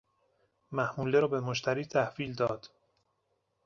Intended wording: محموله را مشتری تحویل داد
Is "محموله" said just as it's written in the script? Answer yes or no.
yes